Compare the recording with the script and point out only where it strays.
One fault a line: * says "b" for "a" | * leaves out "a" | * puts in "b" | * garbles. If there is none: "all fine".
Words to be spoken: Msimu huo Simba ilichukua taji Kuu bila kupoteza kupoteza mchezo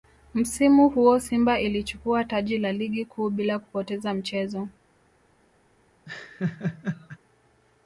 * puts in "la Ligi"
* leaves out "kupoteza"